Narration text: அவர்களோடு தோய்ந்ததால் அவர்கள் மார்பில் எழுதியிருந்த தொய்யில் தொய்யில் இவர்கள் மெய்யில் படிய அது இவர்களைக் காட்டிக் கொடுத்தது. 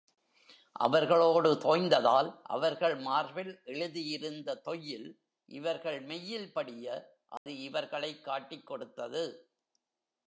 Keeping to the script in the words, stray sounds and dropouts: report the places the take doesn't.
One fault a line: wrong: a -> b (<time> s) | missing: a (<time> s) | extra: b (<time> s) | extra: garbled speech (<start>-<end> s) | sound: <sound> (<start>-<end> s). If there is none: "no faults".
missing: தொய்யில் (5.2 s)
sound: dropout (7.4-7.5 s)